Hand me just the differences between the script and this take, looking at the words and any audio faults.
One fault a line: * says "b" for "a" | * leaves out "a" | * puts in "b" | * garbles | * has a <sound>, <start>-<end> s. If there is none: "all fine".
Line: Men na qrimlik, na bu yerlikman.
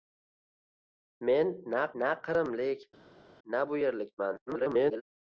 * puts in "na"
* garbles